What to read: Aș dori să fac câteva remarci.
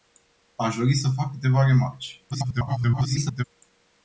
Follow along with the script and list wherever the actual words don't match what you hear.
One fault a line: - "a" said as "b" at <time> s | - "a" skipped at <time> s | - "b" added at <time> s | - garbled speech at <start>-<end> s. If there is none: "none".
- garbled speech at 2.3-3.4 s